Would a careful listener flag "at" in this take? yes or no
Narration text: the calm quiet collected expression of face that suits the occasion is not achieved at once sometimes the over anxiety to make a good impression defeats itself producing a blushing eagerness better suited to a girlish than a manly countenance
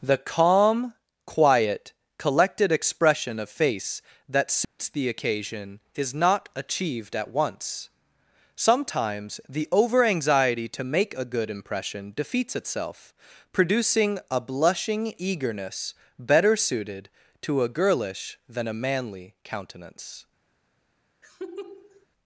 no